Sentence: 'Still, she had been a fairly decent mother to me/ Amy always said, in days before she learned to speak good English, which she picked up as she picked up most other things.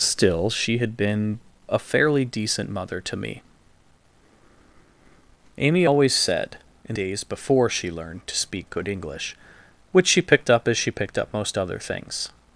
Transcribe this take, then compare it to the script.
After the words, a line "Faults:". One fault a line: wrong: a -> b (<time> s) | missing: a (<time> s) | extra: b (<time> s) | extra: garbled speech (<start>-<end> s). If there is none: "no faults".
'Still, she had been a fairly decent mother to me/ Amy always said, in days before she learned to speak good English, which she picked up as she picked up most other things.
Faults:
no faults